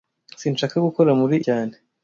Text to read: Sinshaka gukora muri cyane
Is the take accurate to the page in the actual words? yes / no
yes